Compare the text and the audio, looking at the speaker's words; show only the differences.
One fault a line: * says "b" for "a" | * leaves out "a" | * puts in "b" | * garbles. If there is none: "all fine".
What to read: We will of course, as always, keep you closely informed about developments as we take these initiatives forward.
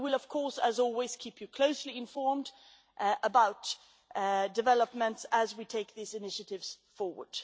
all fine